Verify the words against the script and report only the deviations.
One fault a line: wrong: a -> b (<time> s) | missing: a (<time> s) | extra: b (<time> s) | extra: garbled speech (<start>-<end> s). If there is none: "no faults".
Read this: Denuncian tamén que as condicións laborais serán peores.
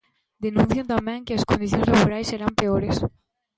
no faults